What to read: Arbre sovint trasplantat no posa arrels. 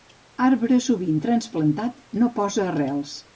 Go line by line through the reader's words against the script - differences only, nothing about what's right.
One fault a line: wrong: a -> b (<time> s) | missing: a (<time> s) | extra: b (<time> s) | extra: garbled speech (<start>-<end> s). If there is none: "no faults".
no faults